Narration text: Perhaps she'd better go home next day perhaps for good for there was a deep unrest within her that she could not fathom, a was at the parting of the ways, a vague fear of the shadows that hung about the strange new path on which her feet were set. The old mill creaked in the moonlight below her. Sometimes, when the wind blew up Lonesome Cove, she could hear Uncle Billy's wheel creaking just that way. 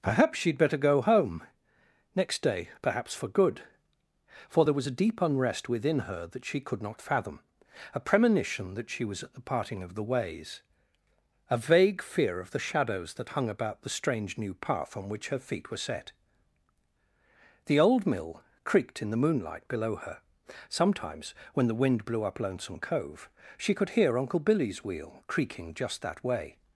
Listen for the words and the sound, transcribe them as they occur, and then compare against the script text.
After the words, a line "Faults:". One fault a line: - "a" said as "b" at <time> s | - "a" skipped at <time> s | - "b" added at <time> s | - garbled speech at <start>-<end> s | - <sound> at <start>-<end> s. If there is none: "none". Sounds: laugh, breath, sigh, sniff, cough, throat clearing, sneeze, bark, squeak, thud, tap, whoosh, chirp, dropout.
Perhaps she'd better go home next day perhaps for good for there was a deep unrest within her that she could not fathom, a premonition that she was at the parting of the ways, a vague fear of the shadows that hung about the strange new path on which her feet were set. The old mill creaked in the moonlight below her. Sometimes, when the wind blew up Lonesome Cove, she could hear Uncle Billy's wheel creaking just that way.
Faults:
- "premonition that she" added at 8.0 s